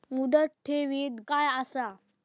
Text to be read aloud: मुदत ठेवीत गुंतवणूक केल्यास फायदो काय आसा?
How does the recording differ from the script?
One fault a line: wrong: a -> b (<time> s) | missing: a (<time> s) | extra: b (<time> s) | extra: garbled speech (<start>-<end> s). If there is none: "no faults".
missing: गुंतवणूक केल्यास फायदो (1.2 s)